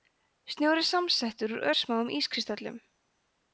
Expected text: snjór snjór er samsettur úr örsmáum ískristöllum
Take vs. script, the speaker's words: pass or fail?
fail